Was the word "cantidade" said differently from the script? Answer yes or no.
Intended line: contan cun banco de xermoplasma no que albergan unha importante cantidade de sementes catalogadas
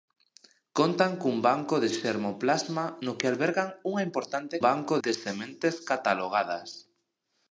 yes